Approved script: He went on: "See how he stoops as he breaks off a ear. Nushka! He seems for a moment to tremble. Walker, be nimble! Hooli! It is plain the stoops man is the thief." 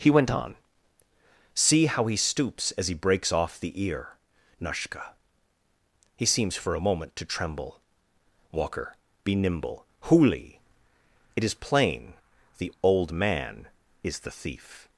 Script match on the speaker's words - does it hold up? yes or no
no